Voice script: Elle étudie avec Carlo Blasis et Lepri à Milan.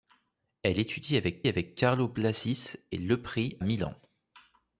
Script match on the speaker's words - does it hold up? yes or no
no